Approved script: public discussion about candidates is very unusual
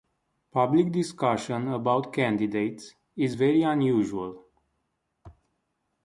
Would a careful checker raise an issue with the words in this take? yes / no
no